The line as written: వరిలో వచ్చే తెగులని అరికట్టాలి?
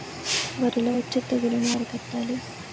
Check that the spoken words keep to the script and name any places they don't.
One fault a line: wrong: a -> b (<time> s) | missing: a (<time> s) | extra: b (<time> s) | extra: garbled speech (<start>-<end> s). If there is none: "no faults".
no faults